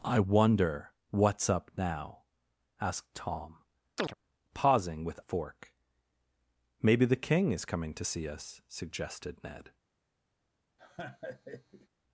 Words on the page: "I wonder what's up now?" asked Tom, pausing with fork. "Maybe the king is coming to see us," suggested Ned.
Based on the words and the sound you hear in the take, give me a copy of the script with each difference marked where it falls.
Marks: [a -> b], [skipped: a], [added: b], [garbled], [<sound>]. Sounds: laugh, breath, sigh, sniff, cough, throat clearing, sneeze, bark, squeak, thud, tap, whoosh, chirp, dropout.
"I wonder what's up now?" asked Tom, [chirp] pausing with fork. "Maybe the king is coming to see us," suggested Ned. [laugh]